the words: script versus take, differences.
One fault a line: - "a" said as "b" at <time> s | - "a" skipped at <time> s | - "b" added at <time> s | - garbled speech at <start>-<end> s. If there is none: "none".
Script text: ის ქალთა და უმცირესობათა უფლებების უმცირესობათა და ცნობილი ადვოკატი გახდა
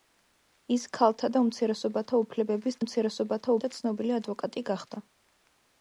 none